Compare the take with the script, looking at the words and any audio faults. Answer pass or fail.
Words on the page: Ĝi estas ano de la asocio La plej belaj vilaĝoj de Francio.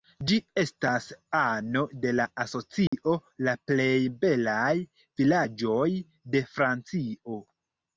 fail